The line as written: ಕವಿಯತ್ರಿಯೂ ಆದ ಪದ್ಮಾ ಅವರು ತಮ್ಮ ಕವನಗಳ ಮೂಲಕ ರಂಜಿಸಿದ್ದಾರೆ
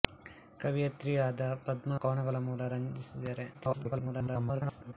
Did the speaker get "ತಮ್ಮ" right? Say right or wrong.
wrong